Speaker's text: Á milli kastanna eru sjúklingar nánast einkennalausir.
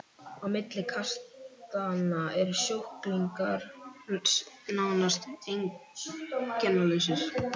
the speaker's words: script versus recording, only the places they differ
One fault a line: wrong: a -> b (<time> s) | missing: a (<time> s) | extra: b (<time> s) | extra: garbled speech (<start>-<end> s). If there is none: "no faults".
no faults